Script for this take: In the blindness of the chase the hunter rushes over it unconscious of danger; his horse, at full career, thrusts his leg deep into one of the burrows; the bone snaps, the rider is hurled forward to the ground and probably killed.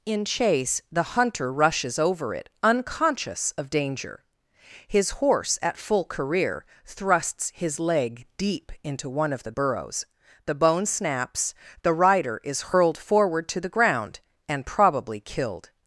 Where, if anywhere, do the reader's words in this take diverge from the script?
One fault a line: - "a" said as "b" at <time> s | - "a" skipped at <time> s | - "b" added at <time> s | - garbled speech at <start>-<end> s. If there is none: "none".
- "the blindness of the" skipped at 0.2 s